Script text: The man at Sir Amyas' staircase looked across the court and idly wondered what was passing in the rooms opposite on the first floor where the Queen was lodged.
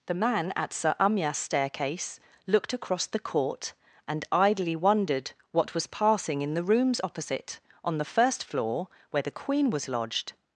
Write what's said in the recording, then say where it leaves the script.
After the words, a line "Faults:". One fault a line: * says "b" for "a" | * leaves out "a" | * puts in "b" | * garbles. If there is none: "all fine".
The man at Sir Amyas' staircase looked across the court and idly wondered what was passing in the rooms opposite on the first floor where the Queen was lodged.
Faults:
all fine